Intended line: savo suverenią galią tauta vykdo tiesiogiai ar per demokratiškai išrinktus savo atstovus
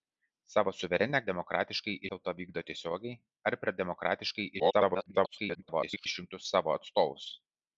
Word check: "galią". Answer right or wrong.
wrong